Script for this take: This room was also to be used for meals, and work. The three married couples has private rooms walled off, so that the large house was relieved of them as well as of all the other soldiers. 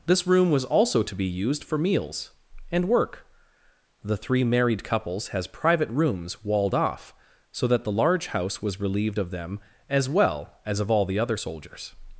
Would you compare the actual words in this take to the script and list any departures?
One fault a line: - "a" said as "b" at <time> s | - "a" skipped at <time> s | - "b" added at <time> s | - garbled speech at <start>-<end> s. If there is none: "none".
none